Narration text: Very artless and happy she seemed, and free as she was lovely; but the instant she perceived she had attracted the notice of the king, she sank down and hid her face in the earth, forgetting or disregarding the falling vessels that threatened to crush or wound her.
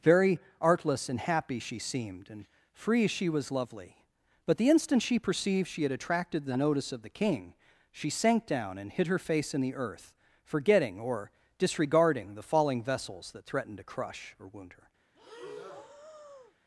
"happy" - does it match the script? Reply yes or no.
yes